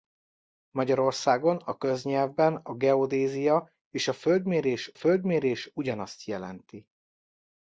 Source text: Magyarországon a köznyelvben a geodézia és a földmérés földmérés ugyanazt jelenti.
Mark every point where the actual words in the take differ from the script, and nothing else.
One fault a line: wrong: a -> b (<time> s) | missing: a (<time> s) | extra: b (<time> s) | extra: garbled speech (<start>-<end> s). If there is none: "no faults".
no faults